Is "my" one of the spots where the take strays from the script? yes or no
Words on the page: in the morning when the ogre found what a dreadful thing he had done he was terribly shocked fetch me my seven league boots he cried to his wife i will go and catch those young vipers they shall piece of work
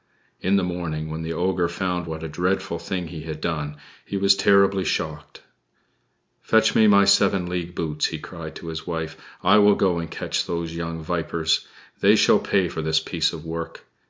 no